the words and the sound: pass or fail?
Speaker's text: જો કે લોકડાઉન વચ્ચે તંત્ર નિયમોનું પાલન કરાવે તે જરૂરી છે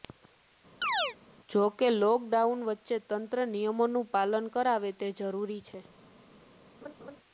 fail